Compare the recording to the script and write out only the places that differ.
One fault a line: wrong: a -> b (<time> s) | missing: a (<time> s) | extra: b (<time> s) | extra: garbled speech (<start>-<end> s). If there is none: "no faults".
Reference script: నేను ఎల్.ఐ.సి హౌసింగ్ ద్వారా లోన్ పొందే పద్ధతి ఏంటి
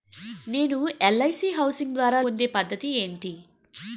missing: లోన్ (2.2 s)